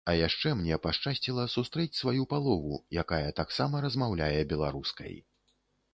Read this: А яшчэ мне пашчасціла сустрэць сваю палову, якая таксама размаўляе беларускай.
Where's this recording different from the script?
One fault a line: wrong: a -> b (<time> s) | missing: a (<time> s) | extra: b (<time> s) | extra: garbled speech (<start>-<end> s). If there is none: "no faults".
no faults